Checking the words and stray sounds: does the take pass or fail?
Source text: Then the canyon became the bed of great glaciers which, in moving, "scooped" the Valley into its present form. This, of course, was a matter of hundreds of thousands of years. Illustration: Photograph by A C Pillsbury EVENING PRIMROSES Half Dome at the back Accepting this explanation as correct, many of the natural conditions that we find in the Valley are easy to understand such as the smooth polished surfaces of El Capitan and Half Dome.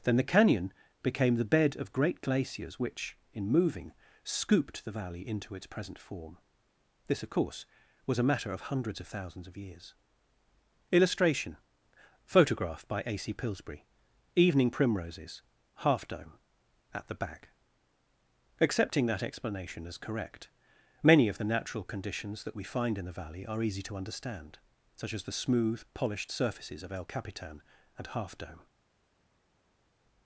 fail